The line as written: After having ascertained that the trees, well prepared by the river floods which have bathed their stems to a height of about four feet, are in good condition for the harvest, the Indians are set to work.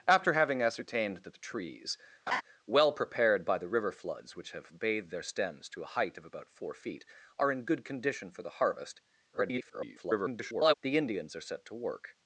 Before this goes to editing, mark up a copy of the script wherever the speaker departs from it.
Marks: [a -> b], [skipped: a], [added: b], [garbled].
After having ascertained that the trees, well prepared by the river floods which have bathed their stems to a height of about four feet, are in good condition for the harvest, [garbled] the Indians are set to work.